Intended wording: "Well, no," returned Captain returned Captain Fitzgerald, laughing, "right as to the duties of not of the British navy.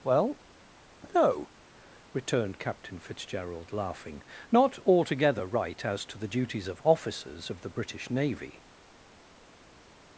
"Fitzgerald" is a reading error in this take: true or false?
true